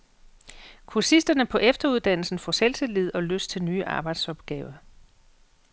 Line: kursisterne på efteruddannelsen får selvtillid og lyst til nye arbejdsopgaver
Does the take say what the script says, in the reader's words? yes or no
yes